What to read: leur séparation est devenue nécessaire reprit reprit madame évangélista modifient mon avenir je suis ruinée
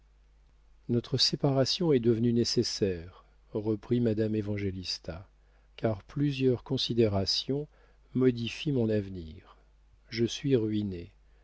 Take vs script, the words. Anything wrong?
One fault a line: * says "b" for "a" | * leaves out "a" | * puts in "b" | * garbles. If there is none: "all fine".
* says "notre" for "leur"
* leaves out "reprit"
* puts in "car plusieurs considérations"